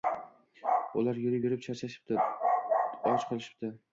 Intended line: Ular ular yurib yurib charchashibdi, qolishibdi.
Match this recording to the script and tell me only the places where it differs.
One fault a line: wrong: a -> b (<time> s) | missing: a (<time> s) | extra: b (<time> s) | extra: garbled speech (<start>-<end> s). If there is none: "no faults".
missing: ular (1.2 s)
extra: och (3.1 s)